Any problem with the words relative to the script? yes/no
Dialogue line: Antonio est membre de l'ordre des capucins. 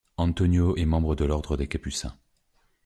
no